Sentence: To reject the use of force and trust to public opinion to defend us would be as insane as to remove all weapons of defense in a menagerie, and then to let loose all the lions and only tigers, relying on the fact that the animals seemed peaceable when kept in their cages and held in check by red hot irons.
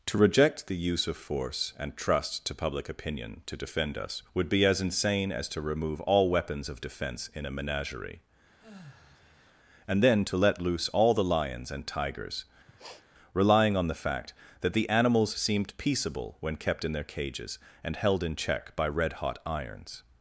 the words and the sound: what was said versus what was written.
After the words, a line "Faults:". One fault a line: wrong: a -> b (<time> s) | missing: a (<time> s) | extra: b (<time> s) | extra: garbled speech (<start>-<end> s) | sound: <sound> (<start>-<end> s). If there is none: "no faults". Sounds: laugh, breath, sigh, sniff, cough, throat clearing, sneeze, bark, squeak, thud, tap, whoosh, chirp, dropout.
To reject the use of force and trust to public opinion to defend us would be as insane as to remove all weapons of defense in a menagerie, and then to let loose all the lions and tigers, relying on the fact that the animals seemed peaceable when kept in their cages and held in check by red hot irons.
Faults:
sound: sigh (8.6-9.6 s)
missing: only (11.9 s)
sound: sniff (12.7-13.1 s)